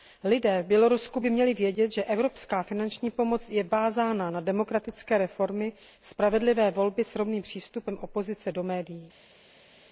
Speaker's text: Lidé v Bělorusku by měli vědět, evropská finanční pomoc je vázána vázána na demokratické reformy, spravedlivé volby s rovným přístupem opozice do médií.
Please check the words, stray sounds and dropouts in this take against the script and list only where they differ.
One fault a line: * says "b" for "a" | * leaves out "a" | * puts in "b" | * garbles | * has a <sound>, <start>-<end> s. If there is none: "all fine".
* puts in "že"
* leaves out "vázána"